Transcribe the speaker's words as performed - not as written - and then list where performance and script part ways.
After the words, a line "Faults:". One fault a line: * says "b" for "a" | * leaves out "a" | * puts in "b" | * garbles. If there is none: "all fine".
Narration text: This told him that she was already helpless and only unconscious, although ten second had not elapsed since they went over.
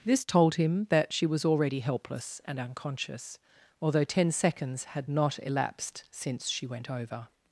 This told him that she was already helpless and unconscious, although ten seconds had not elapsed since she went over.
Faults:
* leaves out "only"
* says "seconds" for "second"
* says "she" for "they"